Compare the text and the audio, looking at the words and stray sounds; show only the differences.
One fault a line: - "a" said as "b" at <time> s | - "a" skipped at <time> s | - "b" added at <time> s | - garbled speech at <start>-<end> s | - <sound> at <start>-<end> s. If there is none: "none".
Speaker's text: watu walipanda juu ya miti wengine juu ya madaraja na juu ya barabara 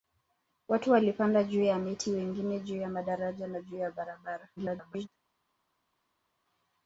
- garbled speech at 4.6-5.1 s